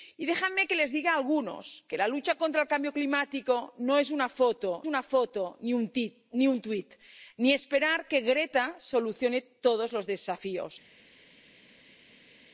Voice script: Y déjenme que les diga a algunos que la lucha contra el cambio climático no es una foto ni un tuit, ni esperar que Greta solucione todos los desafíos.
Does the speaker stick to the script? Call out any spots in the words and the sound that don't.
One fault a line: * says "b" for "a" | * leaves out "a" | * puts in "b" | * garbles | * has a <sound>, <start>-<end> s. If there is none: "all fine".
* puts in "una foto"